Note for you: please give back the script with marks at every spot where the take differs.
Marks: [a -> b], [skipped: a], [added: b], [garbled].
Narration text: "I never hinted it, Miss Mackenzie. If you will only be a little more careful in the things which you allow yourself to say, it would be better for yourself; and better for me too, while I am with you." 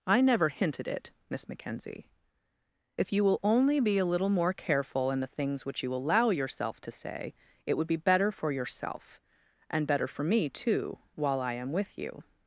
"I never hinted it, Miss Mackenzie. If you will only be a little more careful in the things which you allow yourself to say, it would be better for yourself; and better for me too, while I am with you."